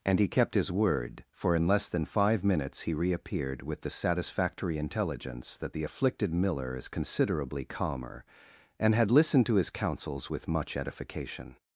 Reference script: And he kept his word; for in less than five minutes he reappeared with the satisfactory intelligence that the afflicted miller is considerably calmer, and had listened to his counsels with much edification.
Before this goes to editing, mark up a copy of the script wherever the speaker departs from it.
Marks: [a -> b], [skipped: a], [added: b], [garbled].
And he kept his word; for in less than five minutes he reappeared with the satisfactory intelligence that the afflicted miller is considerably calmer, and had listened to his counsels with much edification.